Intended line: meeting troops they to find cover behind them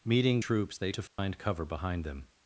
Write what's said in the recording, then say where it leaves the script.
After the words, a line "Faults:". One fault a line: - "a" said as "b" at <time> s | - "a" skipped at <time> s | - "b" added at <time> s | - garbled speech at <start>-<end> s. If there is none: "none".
meeting troops they to find cover behind them
Faults:
none